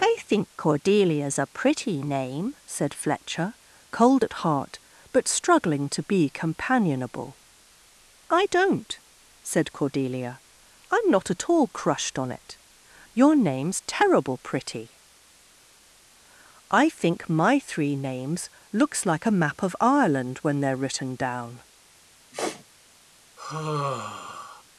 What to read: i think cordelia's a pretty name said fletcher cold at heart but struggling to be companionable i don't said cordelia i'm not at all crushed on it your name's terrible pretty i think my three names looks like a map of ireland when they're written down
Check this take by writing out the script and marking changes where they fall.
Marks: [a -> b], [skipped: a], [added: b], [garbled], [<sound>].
i think cordelia's a pretty name said fletcher cold at heart but struggling to be companionable i don't said cordelia i'm not at all crushed on it your name's terrible pretty i think my three names looks like a map of ireland when they're written down [sniff] [sigh]